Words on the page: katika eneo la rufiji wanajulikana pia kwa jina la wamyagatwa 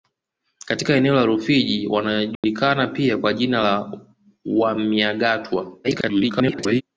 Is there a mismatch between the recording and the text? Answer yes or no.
yes